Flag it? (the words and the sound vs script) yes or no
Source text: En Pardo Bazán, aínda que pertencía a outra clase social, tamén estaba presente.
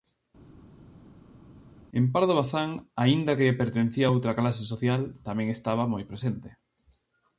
yes